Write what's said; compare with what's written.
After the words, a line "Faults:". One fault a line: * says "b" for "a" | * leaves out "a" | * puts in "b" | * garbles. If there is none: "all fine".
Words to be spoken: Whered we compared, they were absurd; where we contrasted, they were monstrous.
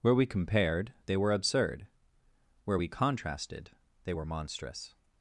Where we compared, they were absurd; where we contrasted, they were monstrous.
Faults:
* says "Where" for "Whered"